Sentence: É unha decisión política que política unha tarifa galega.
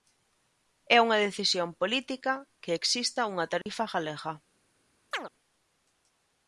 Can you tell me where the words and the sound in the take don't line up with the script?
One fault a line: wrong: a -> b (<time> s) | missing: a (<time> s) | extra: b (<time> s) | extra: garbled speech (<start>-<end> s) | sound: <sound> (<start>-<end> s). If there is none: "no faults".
wrong: política -> exista (2.8 s)
sound: dropout (3.6-3.7 s)
sound: chirp (5.1-5.3 s)